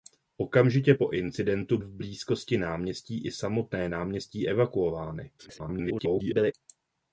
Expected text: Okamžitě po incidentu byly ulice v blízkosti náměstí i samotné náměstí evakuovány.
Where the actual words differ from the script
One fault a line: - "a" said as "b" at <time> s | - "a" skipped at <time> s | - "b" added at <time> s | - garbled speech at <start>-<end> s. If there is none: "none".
- "byly ulice" skipped at 1.8 s
- garbled speech at 5.4-6.5 s